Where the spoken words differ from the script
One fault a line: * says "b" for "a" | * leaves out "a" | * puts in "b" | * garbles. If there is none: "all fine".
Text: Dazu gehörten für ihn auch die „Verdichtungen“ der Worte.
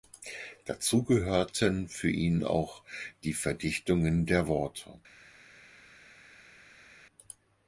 all fine